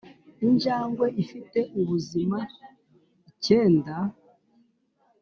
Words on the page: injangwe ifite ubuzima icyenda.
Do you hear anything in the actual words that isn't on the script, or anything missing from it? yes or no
no